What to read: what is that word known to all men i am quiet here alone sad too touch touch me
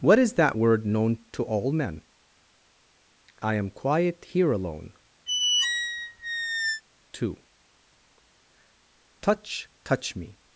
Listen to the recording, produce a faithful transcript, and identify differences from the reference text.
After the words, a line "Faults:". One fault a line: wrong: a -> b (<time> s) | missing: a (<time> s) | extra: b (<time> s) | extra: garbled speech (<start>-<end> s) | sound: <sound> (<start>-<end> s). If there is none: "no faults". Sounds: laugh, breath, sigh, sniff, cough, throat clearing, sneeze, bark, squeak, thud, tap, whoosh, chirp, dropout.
what is that word known to all men i am quiet here alone too touch touch me
Faults:
missing: sad (4.9 s)
sound: squeak (5.3-6.8 s)